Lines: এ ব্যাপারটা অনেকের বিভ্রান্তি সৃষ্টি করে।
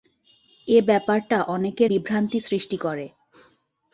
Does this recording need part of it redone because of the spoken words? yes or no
no